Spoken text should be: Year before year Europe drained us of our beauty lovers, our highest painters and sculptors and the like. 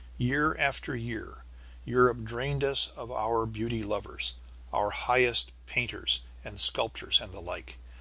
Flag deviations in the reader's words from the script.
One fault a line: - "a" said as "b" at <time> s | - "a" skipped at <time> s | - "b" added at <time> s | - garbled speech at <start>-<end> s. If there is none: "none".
- "before" said as "after" at 0.6 s